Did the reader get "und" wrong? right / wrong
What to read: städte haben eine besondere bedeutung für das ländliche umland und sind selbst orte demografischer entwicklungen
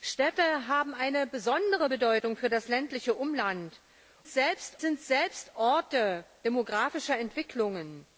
wrong